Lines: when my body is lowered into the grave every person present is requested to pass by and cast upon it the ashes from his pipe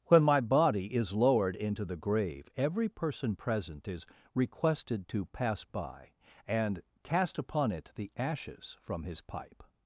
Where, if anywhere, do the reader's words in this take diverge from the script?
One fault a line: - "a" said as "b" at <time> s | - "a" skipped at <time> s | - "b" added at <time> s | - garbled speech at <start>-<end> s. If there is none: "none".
none